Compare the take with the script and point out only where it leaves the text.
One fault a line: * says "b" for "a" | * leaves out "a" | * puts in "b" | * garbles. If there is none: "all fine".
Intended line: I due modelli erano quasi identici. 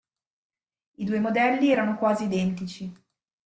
all fine